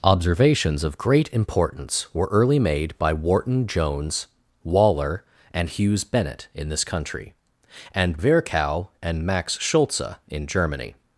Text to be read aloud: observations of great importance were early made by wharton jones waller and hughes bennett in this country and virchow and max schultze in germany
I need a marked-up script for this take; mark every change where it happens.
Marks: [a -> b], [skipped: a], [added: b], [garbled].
observations of great importance were early made by wharton jones waller and hughes bennett in this country and virchow and max schultze in germany